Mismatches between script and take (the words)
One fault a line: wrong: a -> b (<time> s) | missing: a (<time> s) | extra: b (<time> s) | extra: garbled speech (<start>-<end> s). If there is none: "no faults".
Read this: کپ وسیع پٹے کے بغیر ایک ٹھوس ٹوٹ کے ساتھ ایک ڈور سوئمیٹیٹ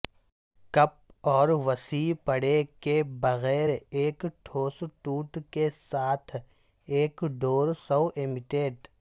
extra: اور (1.3 s)